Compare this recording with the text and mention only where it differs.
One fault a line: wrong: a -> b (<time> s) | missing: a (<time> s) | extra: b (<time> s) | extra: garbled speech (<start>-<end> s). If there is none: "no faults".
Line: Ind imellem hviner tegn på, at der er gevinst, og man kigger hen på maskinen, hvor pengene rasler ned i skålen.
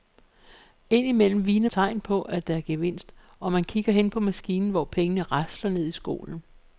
no faults